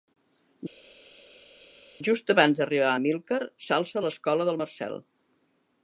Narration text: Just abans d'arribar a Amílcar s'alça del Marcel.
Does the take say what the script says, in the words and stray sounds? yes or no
no